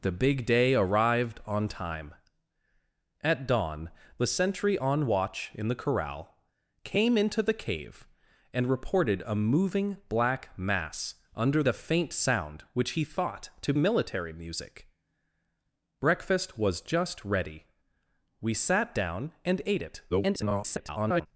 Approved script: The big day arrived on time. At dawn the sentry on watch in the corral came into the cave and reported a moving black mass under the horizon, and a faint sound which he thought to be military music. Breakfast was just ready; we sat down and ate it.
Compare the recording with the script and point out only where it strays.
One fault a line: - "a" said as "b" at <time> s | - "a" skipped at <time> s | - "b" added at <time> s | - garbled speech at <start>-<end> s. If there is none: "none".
- "the horizon and" skipped at 11.6 s
- "be" skipped at 13.7 s
- garbled speech at 20.1-21.3 s